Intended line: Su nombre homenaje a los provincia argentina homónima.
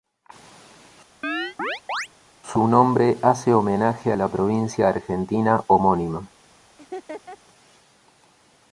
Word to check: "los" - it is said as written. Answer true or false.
false